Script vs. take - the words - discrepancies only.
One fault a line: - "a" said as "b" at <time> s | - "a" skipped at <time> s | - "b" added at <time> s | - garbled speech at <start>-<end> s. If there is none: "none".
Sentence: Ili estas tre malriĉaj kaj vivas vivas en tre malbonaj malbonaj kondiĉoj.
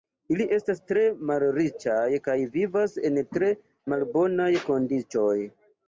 - "vivas" skipped at 2.9 s
- "malbonaj" skipped at 4.5 s